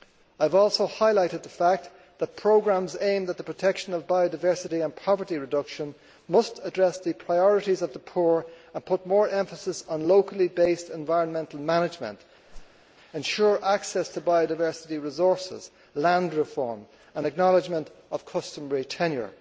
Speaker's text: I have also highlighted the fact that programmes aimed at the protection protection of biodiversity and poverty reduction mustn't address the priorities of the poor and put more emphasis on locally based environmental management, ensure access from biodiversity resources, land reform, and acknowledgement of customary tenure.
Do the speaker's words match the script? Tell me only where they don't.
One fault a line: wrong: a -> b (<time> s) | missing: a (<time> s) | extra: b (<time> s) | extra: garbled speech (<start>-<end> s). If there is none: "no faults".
missing: protection (3.9 s)
wrong: mustn't -> must (6.3 s)
wrong: from -> to (14.1 s)